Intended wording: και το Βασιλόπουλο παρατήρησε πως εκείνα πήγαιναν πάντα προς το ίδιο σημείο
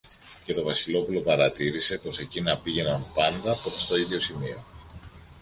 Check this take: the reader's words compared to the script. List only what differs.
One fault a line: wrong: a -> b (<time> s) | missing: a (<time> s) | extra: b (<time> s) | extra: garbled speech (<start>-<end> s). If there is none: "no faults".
no faults